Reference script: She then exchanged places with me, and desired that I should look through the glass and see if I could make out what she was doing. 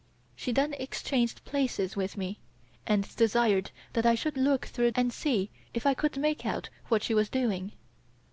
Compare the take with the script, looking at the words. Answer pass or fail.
fail